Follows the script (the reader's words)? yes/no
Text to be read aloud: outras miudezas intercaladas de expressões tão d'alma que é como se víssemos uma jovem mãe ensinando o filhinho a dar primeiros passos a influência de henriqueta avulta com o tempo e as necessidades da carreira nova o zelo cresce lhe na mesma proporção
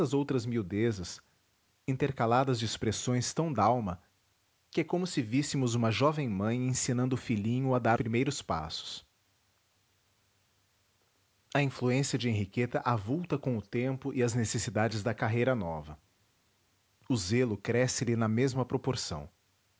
yes